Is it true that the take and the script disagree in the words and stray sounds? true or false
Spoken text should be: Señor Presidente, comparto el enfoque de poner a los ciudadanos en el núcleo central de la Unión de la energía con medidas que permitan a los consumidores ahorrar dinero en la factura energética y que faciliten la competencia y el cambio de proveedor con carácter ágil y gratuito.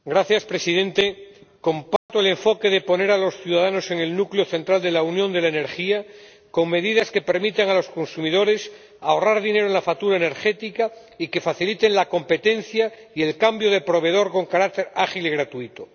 true